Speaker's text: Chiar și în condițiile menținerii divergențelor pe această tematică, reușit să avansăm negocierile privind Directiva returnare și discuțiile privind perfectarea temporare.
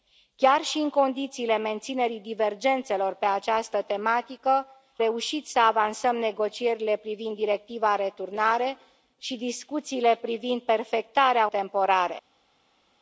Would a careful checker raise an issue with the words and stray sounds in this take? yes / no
no